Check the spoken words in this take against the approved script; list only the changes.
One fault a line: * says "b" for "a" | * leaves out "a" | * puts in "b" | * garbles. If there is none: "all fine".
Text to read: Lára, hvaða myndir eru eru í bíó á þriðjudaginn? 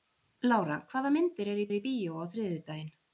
all fine